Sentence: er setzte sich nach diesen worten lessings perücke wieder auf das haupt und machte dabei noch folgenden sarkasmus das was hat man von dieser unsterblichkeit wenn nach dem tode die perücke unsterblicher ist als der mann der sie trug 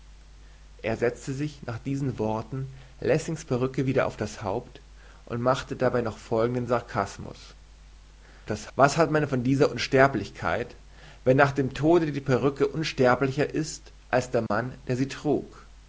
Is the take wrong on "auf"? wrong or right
right